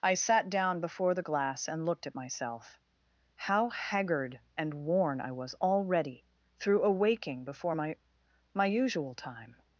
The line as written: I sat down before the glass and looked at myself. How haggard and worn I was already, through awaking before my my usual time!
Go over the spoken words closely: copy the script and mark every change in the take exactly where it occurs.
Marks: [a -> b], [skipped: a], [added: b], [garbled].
I sat down before the glass and looked at myself. How haggard and worn I was already, through awaking before my my usual time!